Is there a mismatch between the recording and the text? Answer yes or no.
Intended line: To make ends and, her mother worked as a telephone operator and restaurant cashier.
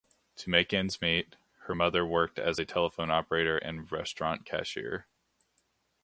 yes